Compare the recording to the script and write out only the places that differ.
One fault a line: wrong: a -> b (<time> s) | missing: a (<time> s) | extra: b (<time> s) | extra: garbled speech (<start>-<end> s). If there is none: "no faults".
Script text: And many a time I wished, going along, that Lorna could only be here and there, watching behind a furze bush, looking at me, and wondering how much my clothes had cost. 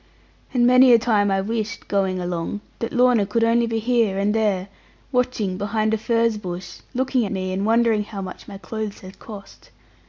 missing: at (7.2 s)